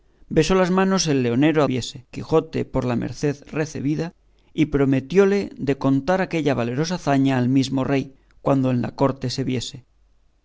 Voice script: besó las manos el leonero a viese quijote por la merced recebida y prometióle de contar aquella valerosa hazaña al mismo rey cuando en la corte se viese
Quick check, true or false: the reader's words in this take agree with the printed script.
true